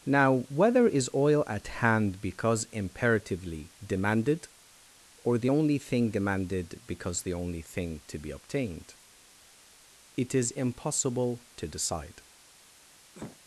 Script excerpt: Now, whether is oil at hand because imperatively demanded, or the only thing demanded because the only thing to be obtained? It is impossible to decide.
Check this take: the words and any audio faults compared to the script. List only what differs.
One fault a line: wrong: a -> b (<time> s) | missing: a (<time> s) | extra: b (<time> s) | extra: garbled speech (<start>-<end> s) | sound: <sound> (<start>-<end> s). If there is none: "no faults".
sound: cough (13.1-13.4 s)